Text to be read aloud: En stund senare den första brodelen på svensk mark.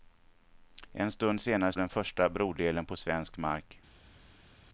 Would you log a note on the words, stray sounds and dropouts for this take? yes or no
no